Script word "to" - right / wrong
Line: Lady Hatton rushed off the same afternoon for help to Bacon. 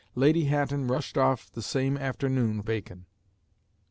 wrong